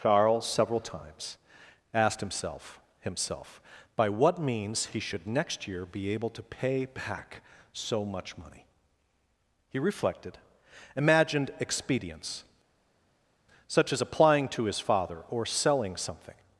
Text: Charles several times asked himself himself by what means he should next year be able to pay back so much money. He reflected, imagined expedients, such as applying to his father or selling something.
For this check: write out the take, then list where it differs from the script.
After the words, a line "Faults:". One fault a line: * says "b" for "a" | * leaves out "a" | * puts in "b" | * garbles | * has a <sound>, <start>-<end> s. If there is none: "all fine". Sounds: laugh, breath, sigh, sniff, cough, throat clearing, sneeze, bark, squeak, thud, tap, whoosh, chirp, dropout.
Charles several times asked himself himself by what means he should next year be able to pay back so much money. He reflected, imagined expedients, such as applying to his father or selling something.
Faults:
all fine